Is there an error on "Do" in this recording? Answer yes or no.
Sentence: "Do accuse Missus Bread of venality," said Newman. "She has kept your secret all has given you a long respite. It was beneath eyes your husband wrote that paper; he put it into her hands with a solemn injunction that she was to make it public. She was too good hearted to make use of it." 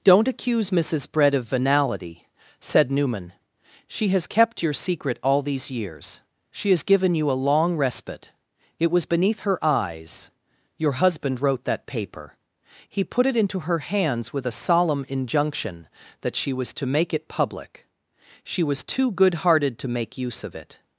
yes